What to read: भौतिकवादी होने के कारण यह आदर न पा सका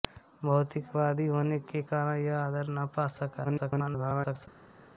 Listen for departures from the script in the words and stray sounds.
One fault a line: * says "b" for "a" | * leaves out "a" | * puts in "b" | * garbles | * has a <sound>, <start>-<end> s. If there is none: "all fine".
* garbles